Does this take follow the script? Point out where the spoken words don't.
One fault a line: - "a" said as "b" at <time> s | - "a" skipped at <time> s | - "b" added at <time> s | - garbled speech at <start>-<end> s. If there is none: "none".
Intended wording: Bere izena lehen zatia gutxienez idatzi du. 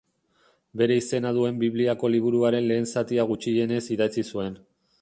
- "duen Bibliako liburuaren" added at 1.4 s
- "du" said as "zuen" at 4.3 s